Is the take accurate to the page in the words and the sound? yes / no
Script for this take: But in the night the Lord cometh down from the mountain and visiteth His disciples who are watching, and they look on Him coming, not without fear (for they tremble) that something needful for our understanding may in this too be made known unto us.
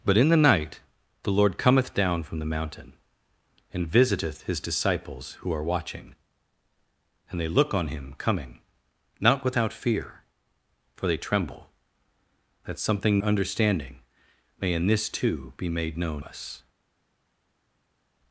no